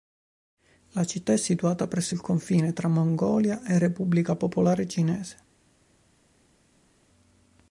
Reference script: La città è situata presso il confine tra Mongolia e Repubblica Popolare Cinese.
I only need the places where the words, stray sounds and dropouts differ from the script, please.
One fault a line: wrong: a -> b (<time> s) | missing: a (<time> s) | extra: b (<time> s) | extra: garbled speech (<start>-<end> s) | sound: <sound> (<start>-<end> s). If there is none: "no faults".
no faults